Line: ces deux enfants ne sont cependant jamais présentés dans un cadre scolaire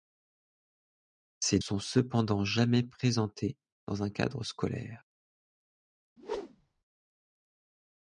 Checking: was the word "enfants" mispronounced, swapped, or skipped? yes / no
yes